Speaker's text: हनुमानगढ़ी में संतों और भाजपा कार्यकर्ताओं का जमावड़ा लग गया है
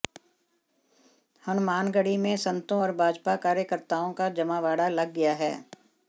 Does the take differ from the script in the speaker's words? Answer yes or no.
no